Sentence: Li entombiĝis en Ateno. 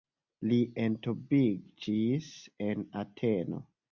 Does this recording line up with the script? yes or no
yes